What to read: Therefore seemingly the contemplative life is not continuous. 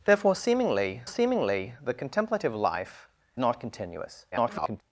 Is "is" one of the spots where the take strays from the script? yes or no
yes